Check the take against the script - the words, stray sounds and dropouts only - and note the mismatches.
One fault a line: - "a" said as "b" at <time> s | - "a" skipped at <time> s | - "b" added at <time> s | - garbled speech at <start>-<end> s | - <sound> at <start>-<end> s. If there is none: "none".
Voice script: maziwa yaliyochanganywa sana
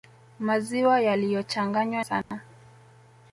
- dropout at 2.2-2.3 s